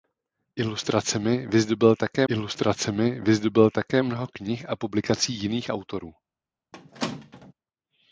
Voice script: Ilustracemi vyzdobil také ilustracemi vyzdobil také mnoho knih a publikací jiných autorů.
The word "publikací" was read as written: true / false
true